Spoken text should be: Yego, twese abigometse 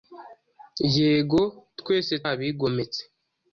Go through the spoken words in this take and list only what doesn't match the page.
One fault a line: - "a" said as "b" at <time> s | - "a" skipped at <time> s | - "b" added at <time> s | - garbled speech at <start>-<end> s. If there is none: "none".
none